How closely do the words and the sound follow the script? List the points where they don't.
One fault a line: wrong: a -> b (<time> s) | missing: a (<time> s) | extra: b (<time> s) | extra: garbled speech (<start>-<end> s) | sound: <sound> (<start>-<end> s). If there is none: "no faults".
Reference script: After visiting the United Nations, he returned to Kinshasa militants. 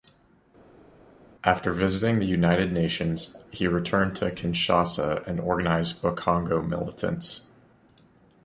extra: and organized Bakongo (5.3 s)